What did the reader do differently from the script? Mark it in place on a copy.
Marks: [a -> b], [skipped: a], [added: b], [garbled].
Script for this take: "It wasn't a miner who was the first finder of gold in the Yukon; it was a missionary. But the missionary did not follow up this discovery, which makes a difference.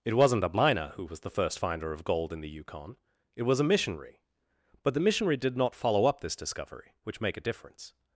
"It wasn't a miner who was the first finder of gold in the Yukon; it was a missionary. But the missionary did not follow up this discovery, which [makes -> make] a difference.